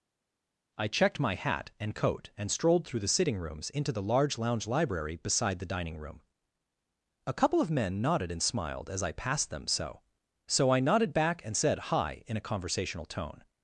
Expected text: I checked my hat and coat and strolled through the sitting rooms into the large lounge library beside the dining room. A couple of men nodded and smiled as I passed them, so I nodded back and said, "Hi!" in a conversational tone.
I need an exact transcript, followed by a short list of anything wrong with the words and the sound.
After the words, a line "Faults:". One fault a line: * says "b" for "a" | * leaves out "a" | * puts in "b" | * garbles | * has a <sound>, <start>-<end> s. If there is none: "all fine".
I checked my hat and coat and strolled through the sitting rooms into the large lounge library beside the dining room. A couple of men nodded and smiled as I passed them, so so I nodded back and said, "Hi!" in a conversational tone.
Faults:
* puts in "so"